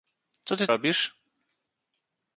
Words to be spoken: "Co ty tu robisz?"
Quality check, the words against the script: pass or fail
fail